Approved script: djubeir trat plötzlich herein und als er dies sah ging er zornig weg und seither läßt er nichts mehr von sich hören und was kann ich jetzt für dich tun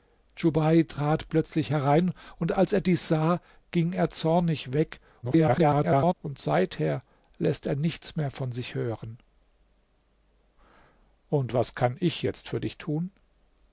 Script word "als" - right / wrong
right